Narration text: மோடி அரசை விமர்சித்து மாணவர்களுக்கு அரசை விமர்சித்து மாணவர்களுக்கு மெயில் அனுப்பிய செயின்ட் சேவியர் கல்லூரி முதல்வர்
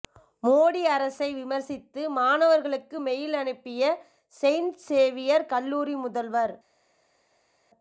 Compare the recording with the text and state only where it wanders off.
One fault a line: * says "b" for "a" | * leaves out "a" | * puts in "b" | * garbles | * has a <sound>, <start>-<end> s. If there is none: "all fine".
* leaves out "அரசை விமர்சித்து மாணவர்களுக்கு"